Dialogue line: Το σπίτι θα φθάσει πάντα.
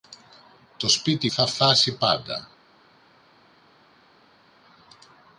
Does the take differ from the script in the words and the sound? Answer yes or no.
no